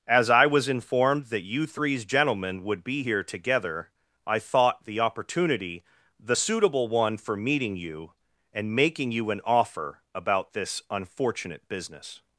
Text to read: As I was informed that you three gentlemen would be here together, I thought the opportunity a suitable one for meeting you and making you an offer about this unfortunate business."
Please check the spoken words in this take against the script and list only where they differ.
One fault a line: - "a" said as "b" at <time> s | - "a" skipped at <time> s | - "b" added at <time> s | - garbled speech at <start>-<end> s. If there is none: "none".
- "three" said as "threes" at 1.6 s
- "a" said as "the" at 6.2 s